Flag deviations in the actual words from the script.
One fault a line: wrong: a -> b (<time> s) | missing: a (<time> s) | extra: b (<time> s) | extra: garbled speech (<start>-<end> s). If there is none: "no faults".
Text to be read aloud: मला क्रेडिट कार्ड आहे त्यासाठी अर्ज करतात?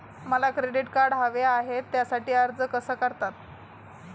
extra: हवे (1.1 s)
extra: कसा (2.7 s)